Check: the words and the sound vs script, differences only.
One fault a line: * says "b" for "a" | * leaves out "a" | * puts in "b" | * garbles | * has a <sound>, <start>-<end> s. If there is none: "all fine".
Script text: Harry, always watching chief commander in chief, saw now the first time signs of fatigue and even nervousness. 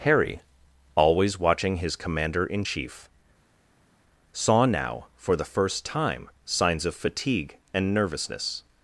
* says "his" for "chief"
* puts in "for"
* leaves out "even"